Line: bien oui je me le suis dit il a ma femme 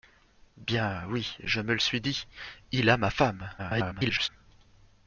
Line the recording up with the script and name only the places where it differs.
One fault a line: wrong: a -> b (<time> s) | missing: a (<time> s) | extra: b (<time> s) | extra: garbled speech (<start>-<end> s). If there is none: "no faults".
extra: garbled speech (3.6-4.3 s)